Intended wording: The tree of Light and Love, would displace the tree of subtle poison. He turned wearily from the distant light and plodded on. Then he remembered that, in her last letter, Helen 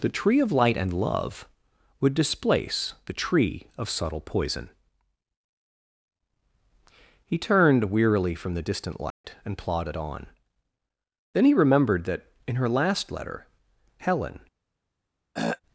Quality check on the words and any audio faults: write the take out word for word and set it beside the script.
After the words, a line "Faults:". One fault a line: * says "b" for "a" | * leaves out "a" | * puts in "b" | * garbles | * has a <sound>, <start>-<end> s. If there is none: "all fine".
The tree of Light and Love, would displace the tree of subtle poison. He turned wearily from the distant light and plodded on. Then he remembered that, in her last letter, Helen
Faults:
* has a dropout, 9.1-9.2 s
* has a throat clearing, 15.3-15.6 s